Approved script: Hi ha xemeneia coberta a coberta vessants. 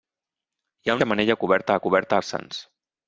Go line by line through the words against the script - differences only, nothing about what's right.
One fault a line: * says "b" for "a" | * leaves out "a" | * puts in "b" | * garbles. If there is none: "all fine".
all fine